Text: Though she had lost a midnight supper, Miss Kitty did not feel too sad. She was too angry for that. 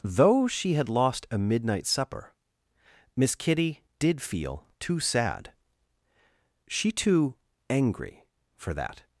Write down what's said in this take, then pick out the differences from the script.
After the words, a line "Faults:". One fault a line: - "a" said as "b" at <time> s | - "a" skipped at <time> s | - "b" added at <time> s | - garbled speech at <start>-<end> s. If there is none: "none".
Though she had lost a midnight supper, Miss Kitty did feel too sad. She too angry for that.
Faults:
- "not" skipped at 4.2 s
- "was" skipped at 6.9 s